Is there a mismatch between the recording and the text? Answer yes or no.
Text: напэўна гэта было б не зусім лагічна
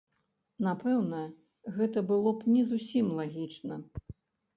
no